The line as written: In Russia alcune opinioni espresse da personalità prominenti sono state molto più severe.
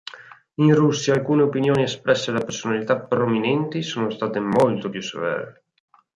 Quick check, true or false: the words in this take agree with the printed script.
true